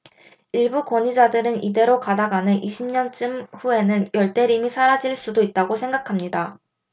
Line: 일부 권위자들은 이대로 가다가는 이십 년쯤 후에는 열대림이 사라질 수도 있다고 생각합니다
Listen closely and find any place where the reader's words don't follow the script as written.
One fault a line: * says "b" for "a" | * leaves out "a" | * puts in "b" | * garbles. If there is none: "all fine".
all fine